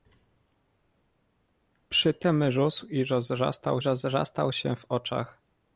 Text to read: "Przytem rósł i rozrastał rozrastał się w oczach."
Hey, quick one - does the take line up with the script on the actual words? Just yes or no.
yes